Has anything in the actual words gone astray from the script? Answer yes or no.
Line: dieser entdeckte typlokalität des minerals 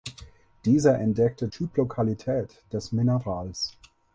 no